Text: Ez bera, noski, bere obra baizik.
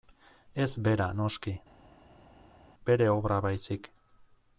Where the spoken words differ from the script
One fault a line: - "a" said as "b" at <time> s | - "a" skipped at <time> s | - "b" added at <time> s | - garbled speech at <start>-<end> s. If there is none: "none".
none